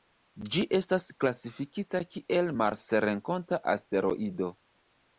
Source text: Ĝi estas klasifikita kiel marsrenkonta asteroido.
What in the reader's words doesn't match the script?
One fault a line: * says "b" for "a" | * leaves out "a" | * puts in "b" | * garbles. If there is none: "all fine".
all fine